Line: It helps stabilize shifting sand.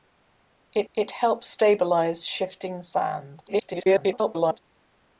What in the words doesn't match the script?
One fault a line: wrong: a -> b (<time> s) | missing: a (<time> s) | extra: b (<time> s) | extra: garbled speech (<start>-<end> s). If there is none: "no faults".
extra: it (0.9 s)
extra: garbled speech (3.5-4.6 s)